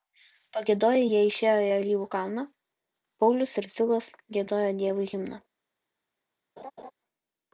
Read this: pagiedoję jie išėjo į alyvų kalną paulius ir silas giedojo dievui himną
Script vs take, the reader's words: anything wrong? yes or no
no